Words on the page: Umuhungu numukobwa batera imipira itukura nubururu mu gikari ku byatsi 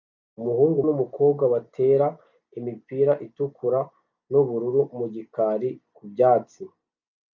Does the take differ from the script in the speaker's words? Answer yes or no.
no